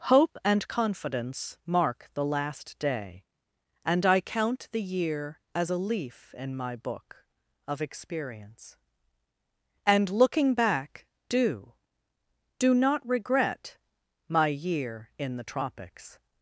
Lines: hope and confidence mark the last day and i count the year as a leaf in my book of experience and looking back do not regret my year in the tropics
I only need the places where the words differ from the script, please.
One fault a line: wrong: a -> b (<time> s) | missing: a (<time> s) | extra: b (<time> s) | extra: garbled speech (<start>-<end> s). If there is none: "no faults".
extra: do (12.6 s)